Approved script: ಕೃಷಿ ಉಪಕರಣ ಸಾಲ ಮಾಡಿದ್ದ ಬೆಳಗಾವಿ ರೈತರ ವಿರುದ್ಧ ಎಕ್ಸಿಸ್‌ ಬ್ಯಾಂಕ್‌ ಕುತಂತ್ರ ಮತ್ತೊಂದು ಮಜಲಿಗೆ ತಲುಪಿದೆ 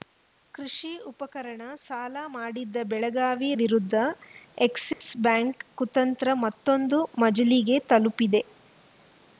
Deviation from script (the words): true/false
true